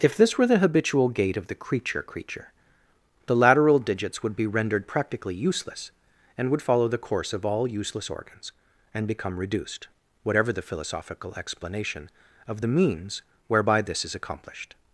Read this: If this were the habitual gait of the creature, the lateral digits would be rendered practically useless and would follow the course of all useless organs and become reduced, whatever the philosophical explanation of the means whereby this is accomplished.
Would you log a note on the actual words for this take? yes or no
yes